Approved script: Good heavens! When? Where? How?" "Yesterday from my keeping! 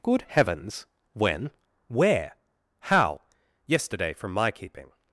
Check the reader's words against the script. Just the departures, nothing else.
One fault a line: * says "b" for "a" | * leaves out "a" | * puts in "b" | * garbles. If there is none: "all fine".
all fine